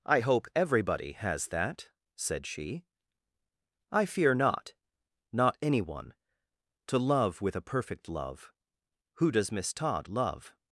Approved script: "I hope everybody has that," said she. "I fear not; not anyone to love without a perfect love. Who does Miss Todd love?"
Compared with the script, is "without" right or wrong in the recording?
wrong